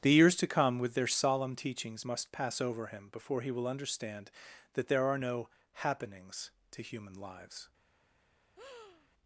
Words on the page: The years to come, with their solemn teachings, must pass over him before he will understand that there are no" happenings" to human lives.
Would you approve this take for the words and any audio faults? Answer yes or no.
no